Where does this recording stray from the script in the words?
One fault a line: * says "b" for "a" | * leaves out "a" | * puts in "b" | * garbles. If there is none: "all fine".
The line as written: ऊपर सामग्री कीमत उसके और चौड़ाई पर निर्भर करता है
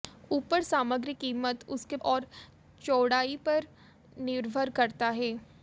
all fine